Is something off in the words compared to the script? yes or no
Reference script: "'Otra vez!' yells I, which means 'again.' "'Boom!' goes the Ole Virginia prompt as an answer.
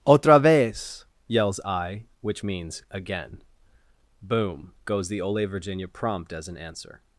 no